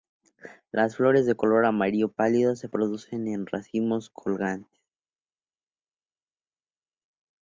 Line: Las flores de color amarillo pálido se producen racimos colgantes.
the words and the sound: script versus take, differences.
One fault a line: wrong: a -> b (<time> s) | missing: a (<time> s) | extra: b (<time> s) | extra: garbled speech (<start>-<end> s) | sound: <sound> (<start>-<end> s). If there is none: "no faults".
extra: en (3.3 s)